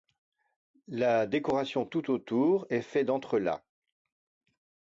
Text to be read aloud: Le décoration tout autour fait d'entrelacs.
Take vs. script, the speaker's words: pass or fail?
fail